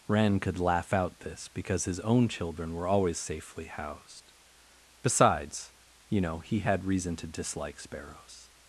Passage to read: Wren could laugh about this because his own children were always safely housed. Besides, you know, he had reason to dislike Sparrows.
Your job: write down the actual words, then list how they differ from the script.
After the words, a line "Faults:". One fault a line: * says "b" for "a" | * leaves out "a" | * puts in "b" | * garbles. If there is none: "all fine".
Wren could laugh out this because his own children were always safely housed. Besides, you know, he had reason to dislike Sparrows.
Faults:
* says "out" for "about"